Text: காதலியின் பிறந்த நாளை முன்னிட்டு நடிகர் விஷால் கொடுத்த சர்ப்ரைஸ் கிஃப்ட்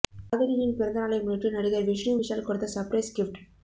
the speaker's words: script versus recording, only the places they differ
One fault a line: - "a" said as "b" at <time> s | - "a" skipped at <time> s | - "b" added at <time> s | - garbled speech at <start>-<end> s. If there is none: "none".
- "விஷ்ணு" added at 1.9 s